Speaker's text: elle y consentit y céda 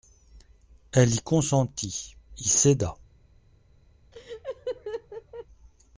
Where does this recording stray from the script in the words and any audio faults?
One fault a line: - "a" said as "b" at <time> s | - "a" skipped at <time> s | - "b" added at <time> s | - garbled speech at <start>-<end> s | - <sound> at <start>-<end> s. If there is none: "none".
- laugh at 4.1-5.5 s